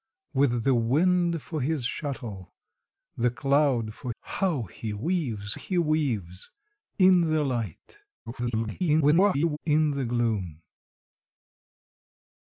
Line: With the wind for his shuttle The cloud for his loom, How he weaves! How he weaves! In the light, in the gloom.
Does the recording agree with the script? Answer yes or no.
no